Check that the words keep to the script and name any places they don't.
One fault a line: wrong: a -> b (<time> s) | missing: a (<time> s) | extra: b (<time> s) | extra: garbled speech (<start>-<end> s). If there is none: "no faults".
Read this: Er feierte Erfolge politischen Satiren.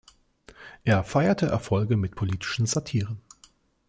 extra: mit (1.9 s)